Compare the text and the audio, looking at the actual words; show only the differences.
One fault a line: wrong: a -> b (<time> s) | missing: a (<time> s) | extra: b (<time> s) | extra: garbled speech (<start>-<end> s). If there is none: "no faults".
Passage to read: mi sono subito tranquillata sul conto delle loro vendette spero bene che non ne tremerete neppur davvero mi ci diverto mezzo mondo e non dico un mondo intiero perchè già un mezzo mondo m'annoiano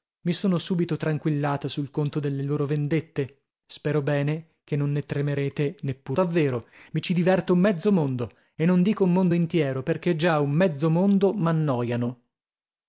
no faults